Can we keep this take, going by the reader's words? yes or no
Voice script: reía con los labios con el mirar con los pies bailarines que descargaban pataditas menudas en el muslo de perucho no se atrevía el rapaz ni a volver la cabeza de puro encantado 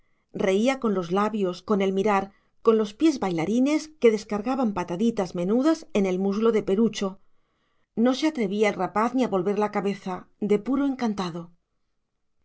yes